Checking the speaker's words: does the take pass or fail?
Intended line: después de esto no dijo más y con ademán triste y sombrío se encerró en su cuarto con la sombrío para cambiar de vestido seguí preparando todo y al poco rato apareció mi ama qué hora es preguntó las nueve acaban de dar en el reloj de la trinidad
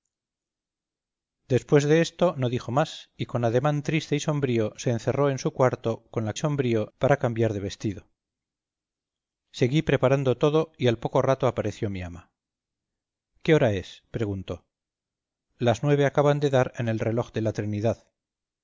pass